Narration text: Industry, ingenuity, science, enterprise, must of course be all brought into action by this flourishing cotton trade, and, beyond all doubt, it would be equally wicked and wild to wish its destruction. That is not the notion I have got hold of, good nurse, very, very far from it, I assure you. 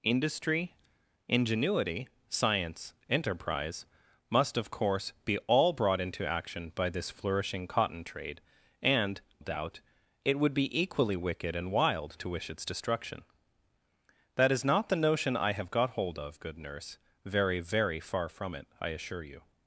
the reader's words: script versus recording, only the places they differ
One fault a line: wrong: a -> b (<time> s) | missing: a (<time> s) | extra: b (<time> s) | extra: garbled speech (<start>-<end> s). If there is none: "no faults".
missing: beyond all (9.2 s)